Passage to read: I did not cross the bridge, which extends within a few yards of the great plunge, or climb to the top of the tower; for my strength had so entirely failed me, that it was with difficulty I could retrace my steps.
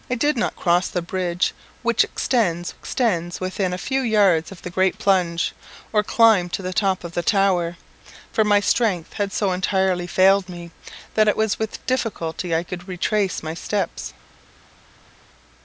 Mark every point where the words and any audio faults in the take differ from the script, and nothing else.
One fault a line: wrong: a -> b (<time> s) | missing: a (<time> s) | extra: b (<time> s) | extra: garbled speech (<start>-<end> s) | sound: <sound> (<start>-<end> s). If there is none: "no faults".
extra: extends (2.7 s)